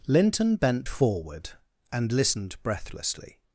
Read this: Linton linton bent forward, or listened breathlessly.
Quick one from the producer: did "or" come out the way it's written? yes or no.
no